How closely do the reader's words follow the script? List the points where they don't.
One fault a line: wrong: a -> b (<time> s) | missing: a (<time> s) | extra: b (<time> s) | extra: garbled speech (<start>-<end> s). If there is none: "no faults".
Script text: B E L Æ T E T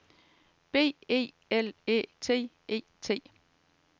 no faults